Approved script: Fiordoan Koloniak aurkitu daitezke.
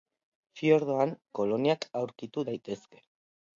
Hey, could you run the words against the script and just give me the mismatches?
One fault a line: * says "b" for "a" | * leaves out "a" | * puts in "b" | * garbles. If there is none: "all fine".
all fine